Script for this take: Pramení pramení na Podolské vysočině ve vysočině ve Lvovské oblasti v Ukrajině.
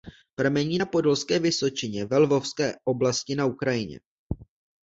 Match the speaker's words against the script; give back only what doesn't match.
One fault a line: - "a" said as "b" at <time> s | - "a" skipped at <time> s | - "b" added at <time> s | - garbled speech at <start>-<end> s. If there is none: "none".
- "pramení" skipped at 0.8 s
- "vysočině ve" skipped at 2.2 s
- "v" said as "na" at 3.3 s